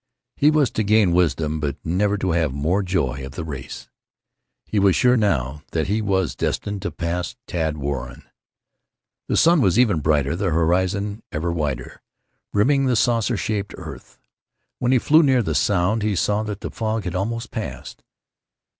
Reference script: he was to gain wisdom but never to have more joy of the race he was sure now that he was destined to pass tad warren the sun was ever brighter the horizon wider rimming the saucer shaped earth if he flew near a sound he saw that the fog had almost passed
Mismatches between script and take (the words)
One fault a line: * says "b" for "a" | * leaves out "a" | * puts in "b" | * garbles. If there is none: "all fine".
* puts in "ever"
* says "when" for "if"
* says "the" for "a"